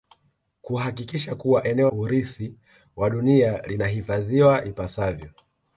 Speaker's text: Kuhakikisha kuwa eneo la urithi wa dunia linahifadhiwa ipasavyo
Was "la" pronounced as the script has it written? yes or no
no